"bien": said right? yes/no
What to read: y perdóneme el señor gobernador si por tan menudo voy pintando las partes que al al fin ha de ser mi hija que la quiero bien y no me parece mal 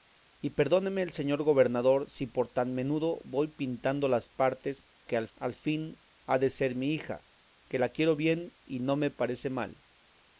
yes